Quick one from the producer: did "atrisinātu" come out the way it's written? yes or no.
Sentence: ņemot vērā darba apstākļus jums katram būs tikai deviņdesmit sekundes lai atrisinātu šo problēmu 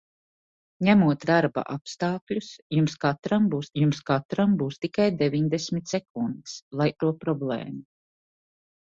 no